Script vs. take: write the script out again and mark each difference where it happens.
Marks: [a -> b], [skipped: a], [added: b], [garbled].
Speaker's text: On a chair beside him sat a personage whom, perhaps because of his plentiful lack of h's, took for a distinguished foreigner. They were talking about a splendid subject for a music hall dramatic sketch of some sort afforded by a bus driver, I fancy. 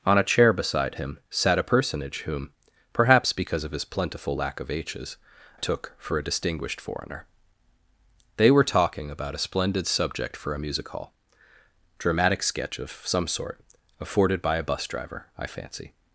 On a chair beside him sat a personage whom, perhaps because of his plentiful lack of h's, took for a distinguished foreigner. They were talking about a splendid subject for a music hall dramatic sketch of some sort afforded by a bus driver, I fancy.